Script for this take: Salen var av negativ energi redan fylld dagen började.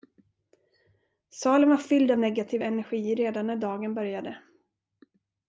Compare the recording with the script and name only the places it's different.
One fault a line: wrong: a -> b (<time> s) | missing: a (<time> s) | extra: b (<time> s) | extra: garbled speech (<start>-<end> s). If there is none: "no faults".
extra: fylld (1.8 s)
wrong: fylld -> när (3.5 s)